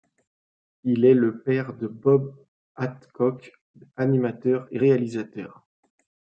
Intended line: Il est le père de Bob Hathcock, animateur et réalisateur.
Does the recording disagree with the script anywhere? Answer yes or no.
no